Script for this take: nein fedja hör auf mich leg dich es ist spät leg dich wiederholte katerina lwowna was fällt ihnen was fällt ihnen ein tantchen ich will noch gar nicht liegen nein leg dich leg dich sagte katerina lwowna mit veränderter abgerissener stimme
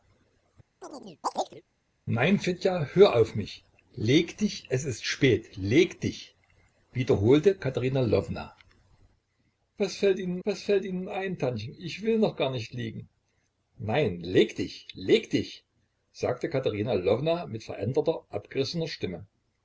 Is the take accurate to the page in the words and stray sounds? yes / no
no